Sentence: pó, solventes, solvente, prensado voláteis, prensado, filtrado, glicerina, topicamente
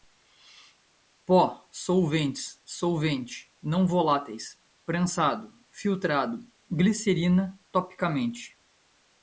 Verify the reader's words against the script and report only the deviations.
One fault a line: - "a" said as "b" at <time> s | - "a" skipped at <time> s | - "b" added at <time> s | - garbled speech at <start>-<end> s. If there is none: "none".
- "prensado" said as "não" at 3.6 s